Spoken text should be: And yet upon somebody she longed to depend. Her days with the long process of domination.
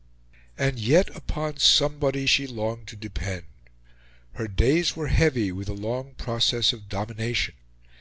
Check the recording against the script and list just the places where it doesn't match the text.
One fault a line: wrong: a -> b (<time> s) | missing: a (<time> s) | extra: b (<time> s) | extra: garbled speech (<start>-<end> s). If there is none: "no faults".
extra: were heavy (4.9 s)